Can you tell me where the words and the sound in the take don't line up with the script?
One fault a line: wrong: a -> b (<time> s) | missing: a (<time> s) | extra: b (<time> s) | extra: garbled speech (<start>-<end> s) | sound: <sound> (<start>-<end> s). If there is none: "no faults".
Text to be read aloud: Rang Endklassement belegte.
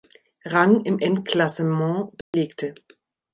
extra: im (0.8 s)
sound: dropout (2.2-2.3 s)